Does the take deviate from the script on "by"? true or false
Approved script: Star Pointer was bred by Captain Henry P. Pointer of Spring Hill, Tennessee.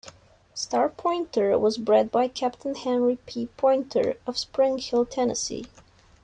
false